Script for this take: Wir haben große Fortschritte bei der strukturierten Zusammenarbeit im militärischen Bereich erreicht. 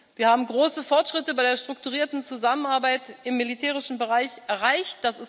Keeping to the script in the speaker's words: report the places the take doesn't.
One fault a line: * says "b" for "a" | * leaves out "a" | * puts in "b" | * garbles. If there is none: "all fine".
all fine